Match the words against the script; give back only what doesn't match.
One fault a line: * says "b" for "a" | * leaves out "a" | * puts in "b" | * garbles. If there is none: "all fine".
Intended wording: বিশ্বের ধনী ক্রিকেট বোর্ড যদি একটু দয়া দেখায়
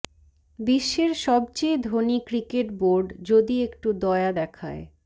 * puts in "সবচেয়ে"